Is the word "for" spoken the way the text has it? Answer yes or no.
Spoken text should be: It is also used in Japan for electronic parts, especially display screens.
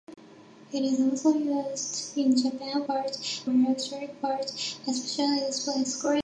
no